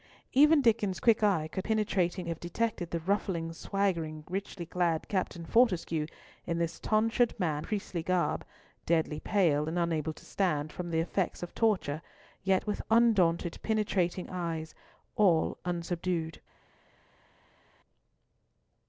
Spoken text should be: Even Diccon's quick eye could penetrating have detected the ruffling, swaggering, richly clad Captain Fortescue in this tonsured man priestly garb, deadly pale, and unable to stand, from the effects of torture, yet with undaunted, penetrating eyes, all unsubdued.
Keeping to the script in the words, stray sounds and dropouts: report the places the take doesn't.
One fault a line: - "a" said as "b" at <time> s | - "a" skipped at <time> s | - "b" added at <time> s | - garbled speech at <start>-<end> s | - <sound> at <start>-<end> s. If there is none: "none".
none